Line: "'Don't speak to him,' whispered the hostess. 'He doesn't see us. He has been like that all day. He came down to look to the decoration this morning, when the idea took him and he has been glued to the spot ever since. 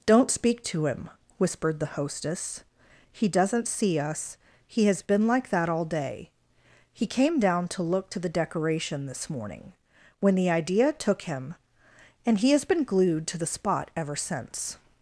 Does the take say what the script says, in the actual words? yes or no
yes